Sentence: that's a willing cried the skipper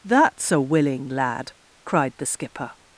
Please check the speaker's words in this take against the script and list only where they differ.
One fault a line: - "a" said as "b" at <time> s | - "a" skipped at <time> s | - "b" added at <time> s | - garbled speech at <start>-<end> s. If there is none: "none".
- "lad" added at 1.1 s